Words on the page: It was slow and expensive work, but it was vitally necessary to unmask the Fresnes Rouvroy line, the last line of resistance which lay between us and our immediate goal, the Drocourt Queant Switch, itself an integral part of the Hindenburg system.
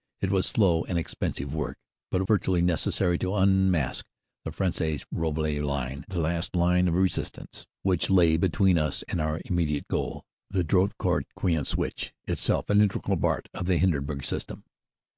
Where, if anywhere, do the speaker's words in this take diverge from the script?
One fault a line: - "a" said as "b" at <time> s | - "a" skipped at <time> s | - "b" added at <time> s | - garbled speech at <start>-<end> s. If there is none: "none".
- "was" skipped at 2.2 s